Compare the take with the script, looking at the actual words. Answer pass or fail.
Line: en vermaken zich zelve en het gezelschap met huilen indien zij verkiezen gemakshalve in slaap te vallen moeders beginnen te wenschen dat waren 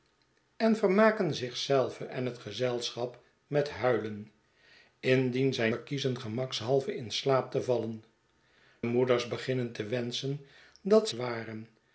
pass